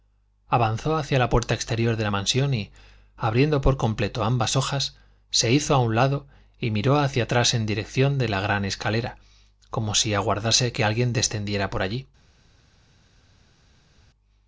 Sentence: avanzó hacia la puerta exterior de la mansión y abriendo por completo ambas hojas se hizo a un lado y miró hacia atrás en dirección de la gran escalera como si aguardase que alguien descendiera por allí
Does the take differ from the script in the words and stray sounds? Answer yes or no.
no